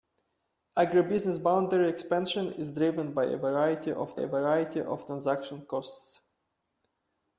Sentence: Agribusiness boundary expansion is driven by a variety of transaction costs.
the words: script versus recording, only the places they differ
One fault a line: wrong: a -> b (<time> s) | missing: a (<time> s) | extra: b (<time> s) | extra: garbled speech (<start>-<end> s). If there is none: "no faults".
extra: a variety of (4.2 s)